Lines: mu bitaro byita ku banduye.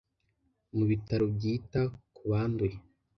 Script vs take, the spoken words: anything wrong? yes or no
no